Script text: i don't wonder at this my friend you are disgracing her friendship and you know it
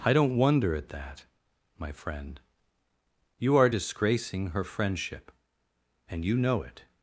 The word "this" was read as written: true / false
false